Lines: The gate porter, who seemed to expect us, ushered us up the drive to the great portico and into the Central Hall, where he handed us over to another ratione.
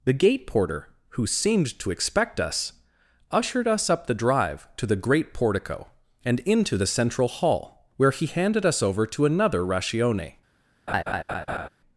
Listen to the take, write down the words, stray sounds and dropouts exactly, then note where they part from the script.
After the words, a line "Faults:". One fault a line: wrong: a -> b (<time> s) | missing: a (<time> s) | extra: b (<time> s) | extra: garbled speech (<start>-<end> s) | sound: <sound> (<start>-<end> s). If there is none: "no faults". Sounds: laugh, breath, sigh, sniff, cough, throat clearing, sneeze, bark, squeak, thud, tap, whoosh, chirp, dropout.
The gate porter, who seemed to expect us, ushered us up the drive to the great portico and into the Central Hall, where he handed us over to another ratione.
Faults:
sound: laugh (10.9-11.7 s)